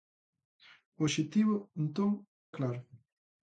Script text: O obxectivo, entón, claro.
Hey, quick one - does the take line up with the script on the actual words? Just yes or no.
yes